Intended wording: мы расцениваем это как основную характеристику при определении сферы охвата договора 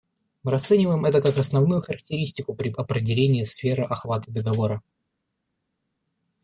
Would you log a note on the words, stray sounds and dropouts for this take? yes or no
no